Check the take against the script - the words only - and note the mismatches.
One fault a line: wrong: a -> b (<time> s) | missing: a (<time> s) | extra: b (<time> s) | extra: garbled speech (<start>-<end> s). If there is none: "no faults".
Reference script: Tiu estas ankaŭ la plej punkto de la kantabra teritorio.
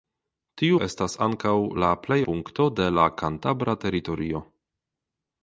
no faults